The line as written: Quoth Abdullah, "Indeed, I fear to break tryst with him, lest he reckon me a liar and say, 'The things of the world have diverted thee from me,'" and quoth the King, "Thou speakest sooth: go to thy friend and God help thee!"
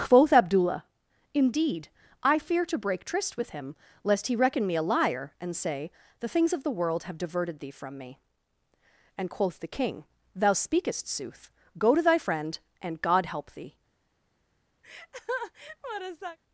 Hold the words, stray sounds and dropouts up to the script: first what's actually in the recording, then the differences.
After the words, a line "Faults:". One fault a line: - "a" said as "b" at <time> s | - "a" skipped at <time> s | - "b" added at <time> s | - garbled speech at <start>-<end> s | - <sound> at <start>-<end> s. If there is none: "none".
Quoth Abdullah, "Indeed, I fear to break tryst with him, lest he reckon me a liar and say, 'The things of the world have diverted thee from me,'" and quoth the King, "Thou speakest sooth: go to thy friend and God help thee!"
Faults:
- laugh at 14.8-16.4 s